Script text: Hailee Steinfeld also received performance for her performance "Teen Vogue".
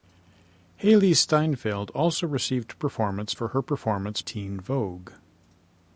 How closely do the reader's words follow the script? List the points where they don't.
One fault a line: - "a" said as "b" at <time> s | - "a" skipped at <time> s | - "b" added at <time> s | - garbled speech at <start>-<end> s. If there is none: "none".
none